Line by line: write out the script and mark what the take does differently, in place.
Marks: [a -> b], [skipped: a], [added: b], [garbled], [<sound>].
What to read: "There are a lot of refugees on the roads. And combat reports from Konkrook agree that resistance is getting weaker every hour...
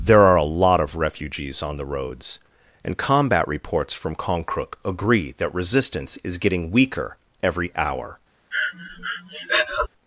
"There are a lot of refugees on the roads. And combat reports from Konkrook agree that resistance is getting weaker every hour... [breath]